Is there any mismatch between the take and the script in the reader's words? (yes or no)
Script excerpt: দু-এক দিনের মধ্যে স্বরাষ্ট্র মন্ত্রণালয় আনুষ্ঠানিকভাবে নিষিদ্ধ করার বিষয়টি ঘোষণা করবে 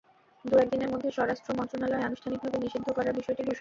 no